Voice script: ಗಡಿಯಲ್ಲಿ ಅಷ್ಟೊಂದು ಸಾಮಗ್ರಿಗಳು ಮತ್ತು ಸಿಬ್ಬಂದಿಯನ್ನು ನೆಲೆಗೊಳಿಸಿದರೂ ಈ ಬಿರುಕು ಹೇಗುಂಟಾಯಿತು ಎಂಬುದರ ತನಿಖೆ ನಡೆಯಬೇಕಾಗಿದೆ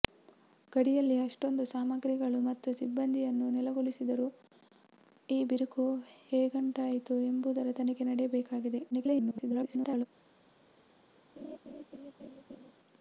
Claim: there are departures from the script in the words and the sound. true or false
true